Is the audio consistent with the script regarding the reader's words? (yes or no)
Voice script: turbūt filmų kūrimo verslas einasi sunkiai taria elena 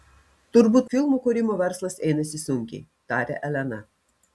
yes